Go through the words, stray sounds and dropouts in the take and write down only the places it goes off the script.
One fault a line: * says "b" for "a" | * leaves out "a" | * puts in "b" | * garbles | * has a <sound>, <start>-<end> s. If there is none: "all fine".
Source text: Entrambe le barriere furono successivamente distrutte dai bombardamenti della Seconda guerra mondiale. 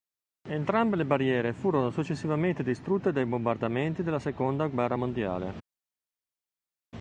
all fine